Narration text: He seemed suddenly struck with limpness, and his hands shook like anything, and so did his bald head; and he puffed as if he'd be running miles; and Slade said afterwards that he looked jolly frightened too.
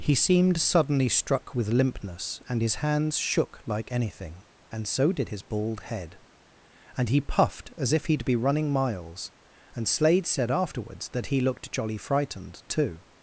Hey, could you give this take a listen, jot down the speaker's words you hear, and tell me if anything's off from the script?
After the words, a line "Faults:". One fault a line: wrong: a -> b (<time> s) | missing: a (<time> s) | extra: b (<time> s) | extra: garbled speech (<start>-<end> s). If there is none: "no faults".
He seemed suddenly struck with limpness, and his hands shook like anything, and so did his bald head; and he puffed as if he'd be running miles; and Slade said afterwards that he looked jolly frightened too.
Faults:
no faults